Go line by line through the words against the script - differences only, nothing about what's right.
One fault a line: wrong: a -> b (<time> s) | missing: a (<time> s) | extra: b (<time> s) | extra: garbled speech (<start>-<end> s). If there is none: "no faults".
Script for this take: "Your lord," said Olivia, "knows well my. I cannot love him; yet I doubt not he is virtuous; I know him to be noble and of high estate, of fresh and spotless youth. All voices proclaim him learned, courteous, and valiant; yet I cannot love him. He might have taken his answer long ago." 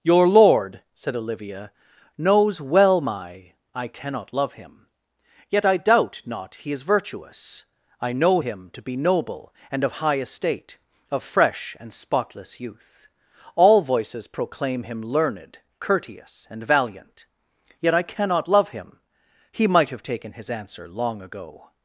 no faults